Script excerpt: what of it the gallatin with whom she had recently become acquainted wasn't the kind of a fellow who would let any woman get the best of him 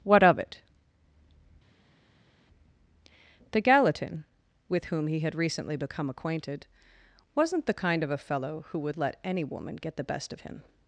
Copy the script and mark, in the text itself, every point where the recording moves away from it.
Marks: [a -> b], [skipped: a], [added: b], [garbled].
what of it the gallatin with whom [she -> he] had recently become acquainted wasn't the kind of a fellow who would let any woman get the best of him